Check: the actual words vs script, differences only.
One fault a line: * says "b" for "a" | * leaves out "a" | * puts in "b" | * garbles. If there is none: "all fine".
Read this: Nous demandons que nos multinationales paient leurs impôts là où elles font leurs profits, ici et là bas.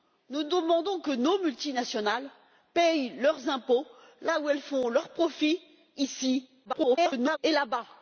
* garbles